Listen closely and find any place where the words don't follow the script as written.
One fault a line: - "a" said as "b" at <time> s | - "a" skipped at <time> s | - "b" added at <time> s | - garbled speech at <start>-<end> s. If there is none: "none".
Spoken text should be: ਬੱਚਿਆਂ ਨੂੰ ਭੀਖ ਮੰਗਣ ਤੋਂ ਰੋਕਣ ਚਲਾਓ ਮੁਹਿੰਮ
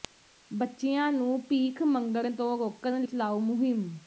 none